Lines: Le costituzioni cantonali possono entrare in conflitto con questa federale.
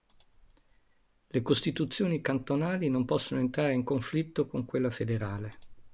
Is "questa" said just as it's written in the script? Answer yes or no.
no